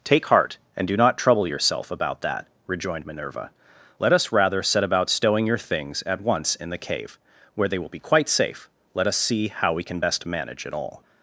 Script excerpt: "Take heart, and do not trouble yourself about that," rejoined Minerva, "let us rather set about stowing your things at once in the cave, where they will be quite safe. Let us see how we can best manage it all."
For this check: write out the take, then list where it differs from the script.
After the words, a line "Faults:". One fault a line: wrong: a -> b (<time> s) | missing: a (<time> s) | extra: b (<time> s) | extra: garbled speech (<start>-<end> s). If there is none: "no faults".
"Take heart, and do not trouble yourself about that," rejoined Minerva, "let us rather set about stowing your things at once in the cave, where they will be quite safe. Let us see how we can best manage it all."
Faults:
no faults